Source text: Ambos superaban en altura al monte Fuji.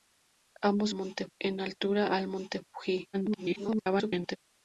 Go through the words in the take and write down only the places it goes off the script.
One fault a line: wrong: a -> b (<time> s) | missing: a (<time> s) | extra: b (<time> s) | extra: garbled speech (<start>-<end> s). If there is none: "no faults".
wrong: superaban -> monte (0.9 s)
extra: garbled speech (3.1-4.4 s)